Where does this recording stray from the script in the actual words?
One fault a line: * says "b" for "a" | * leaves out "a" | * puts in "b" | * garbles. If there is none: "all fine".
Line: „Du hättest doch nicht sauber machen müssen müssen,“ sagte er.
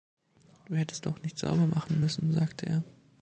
* leaves out "müssen"